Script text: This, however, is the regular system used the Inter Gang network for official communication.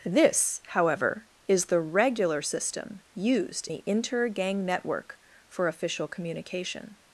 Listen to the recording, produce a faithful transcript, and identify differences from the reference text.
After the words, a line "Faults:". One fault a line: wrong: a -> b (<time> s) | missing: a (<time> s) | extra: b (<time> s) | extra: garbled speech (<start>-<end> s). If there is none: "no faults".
This, however, is the regular system used the Inter Gang network for official communication.
Faults:
no faults